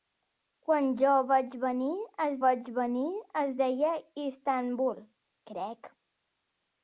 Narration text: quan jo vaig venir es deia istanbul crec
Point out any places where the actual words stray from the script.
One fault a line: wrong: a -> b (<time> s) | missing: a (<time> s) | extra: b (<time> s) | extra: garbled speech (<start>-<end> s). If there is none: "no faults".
extra: vaig venir es (2.4 s)